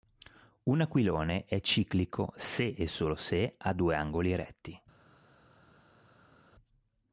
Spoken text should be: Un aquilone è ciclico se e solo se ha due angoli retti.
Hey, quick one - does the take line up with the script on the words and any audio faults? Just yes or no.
yes